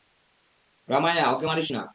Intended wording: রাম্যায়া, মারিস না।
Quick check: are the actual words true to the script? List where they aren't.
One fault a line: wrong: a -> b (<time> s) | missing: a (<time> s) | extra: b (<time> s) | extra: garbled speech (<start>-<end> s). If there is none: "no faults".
extra: ওকে (1.3 s)